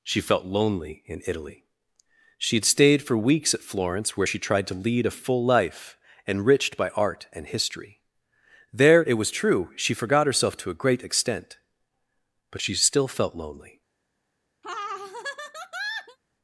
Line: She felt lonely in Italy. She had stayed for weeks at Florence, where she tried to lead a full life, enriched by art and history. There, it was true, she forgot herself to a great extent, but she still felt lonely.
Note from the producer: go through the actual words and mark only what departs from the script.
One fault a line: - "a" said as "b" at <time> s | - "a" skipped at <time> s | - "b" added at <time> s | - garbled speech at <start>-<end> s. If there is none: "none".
none